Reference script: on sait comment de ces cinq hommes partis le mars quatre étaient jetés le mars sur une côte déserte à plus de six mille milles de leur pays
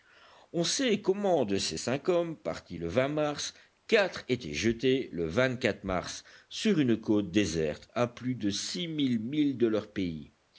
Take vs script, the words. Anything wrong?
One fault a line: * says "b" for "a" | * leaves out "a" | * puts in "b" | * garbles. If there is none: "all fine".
all fine